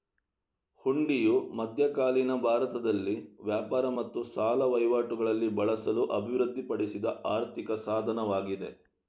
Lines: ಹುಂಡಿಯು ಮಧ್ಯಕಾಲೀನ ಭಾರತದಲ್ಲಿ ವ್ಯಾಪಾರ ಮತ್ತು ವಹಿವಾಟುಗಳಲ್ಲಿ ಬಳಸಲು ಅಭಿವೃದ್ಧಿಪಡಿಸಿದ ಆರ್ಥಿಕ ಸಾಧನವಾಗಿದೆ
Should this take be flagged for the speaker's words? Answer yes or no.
yes